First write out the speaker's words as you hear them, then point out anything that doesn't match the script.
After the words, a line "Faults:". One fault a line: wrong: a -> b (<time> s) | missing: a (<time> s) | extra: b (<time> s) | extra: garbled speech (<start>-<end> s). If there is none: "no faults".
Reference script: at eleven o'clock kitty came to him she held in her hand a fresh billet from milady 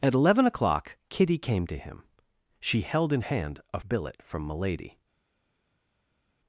at eleven o'clock kitty came to him she held in hand a billet from milady
Faults:
missing: her (3.2 s)
missing: fresh (3.8 s)